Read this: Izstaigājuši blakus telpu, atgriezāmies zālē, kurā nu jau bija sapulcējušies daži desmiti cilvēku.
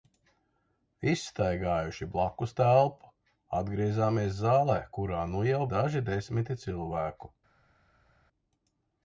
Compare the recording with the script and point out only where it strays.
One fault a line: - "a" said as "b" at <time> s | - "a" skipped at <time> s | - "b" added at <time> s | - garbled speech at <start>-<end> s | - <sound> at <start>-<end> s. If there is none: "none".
- "bija sapulcējušies" skipped at 5.6 s